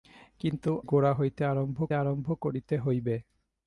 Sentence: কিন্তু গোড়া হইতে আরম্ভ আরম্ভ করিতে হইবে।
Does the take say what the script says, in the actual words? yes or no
yes